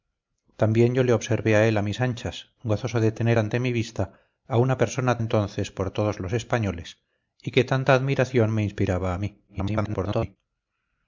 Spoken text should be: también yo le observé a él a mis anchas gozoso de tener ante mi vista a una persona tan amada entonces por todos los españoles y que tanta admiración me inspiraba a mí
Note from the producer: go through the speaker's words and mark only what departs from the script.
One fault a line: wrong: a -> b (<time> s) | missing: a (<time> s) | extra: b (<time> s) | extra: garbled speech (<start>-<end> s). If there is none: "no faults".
missing: tan amada (5.2 s)
extra: garbled speech (9.5-10.4 s)